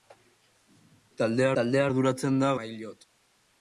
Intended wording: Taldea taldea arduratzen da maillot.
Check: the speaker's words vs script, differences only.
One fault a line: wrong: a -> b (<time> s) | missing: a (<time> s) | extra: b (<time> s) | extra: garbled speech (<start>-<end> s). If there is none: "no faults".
no faults